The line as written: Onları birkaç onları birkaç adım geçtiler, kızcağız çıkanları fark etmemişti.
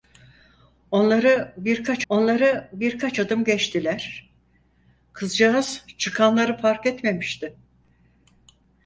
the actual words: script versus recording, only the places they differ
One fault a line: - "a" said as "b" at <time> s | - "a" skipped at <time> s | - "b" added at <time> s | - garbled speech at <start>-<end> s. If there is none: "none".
none